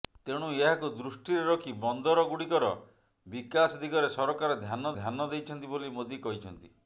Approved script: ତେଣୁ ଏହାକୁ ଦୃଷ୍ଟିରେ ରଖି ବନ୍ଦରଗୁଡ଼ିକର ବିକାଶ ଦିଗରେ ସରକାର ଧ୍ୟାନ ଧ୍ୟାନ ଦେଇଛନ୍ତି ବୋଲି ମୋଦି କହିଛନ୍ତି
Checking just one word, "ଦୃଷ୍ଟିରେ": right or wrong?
right